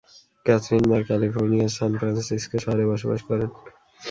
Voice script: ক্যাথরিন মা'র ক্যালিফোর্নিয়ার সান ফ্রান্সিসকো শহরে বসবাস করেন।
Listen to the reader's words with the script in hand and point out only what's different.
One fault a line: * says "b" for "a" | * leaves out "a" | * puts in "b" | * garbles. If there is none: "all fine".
all fine